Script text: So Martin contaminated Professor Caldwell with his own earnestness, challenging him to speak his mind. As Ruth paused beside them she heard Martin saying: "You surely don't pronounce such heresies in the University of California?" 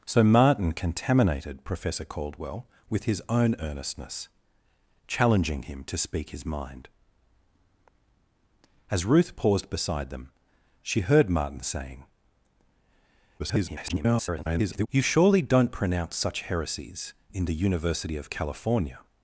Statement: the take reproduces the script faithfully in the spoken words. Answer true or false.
false